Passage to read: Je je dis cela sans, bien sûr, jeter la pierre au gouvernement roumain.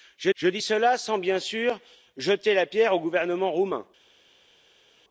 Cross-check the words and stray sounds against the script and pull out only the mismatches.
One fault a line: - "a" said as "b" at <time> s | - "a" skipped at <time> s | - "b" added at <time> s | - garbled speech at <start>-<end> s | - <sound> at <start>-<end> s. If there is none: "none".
none